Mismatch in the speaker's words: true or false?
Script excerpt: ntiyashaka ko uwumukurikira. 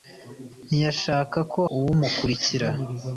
false